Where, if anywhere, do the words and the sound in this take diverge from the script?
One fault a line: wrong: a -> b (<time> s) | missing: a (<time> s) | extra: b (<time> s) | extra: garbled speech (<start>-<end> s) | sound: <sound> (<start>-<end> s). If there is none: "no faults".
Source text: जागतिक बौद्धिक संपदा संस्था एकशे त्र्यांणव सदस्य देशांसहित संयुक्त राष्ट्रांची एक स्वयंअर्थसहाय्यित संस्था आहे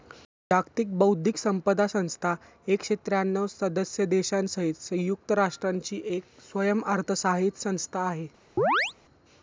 sound: chirp (8.6-8.9 s)